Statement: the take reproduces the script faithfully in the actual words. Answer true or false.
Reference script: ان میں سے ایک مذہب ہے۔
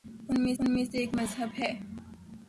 false